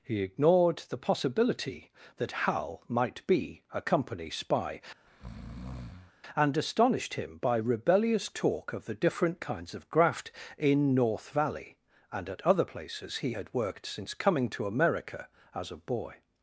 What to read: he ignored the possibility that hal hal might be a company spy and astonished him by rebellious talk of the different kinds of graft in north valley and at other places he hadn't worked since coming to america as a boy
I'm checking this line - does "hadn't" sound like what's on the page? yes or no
no